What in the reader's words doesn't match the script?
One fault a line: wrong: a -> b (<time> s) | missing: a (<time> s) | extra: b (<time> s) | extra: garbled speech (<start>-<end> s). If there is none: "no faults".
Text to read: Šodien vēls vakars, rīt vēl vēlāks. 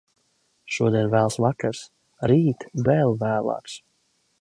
no faults